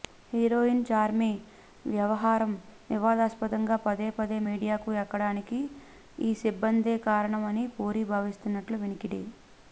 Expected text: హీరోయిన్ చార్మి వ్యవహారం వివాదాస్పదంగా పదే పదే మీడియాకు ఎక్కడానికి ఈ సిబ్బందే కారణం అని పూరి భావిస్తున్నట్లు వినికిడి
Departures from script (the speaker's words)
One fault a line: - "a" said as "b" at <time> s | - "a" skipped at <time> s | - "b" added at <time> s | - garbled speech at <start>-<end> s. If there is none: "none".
none